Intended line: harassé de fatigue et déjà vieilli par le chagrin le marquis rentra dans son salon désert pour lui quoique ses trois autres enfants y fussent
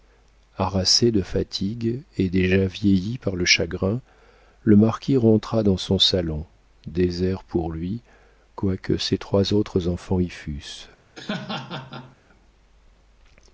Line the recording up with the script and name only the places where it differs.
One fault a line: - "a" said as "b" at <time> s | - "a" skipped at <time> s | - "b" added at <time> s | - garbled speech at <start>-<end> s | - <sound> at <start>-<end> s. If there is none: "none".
- laugh at 11.2-12.2 s